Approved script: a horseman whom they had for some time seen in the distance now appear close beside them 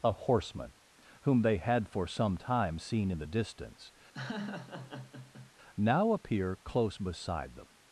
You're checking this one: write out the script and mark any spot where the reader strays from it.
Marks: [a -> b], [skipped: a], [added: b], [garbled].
a horseman whom they had for some time seen in the distance now appear close beside them